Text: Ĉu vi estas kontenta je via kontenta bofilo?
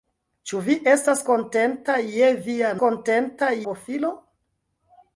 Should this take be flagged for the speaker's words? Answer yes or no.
no